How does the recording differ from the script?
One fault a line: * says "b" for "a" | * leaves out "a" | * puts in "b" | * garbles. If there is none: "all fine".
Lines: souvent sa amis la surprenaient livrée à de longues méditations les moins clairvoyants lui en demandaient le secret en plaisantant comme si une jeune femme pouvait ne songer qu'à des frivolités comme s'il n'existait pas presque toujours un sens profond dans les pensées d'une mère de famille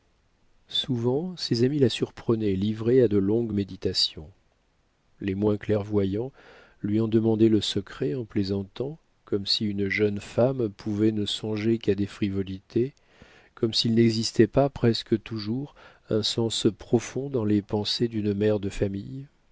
* says "ses" for "sa"